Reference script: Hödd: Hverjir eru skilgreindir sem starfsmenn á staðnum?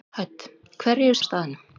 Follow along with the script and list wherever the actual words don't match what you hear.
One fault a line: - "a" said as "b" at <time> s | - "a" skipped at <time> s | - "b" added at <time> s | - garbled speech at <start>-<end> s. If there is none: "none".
- "skilgreindir sem starfsmenn" skipped at 1.2 s